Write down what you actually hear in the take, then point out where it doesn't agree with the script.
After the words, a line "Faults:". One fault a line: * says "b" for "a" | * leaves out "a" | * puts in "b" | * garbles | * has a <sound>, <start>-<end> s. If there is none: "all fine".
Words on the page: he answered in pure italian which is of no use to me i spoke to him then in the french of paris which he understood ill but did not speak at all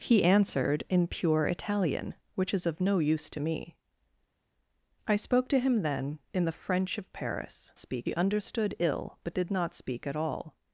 he answered in pure italian which is of no use to me i spoke to him then in the french of paris speak he understood ill but did not speak at all
Faults:
* says "speak" for "which"